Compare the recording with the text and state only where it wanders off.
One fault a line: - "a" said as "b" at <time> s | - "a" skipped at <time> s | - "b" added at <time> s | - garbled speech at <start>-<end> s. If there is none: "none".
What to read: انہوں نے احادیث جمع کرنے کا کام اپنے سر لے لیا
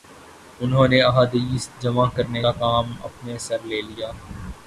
none